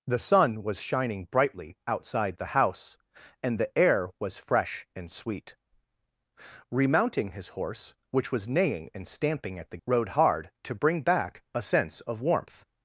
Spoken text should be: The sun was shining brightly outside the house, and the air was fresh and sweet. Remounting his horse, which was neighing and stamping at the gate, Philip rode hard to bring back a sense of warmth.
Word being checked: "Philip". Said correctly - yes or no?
no